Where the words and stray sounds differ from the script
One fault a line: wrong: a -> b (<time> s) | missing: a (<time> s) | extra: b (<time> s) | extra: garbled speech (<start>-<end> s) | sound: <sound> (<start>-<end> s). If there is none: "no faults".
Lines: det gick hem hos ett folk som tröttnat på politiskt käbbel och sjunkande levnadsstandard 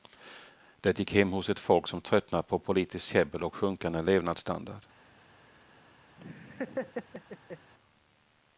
sound: laugh (6.2-7.7 s)